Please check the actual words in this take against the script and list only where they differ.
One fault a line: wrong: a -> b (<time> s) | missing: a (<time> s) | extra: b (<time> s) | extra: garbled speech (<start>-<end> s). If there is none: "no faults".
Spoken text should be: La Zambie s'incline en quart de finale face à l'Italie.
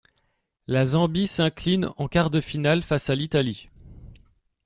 no faults